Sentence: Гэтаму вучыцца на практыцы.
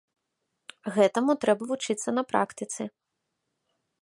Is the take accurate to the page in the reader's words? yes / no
no